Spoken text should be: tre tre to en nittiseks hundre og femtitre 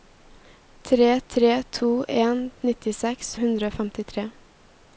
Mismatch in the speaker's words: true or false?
false